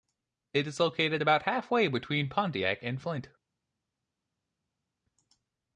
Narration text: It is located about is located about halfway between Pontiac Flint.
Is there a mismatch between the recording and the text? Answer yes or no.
yes